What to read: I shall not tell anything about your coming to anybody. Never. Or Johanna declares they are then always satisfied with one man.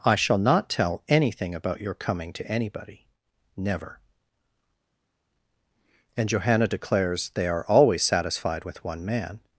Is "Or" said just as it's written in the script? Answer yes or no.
no